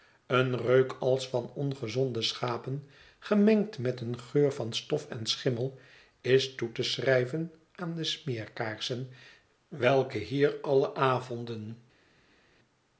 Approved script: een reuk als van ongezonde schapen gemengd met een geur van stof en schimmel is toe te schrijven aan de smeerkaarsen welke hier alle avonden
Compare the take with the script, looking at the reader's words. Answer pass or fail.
pass